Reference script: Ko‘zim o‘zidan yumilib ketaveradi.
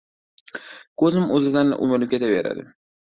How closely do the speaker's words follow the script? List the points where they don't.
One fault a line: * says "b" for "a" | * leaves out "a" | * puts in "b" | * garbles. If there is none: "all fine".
all fine